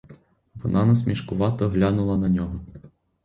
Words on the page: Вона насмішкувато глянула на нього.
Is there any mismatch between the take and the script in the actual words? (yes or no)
no